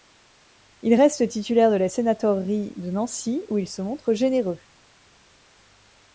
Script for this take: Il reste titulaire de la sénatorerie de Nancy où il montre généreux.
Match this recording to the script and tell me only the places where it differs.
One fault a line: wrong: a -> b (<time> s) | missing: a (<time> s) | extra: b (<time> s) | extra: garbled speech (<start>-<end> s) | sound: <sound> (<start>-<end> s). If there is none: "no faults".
extra: se (3.7 s)